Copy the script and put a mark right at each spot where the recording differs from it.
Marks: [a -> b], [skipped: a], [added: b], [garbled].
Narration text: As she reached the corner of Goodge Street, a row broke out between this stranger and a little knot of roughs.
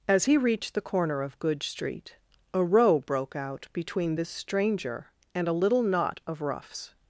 As [she -> he] reached the corner of Goodge Street, a row broke out between this stranger and a little knot of roughs.